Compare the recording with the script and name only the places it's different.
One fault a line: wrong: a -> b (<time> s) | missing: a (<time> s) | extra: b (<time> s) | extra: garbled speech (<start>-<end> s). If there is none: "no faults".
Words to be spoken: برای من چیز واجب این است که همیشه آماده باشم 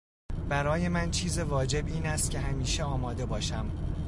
no faults